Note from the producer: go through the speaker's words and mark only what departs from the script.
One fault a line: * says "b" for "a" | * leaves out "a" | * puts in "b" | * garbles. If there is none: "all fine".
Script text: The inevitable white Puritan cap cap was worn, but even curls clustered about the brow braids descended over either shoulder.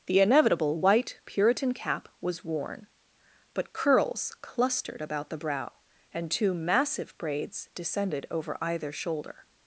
* leaves out "cap"
* leaves out "even"
* puts in "and two massive"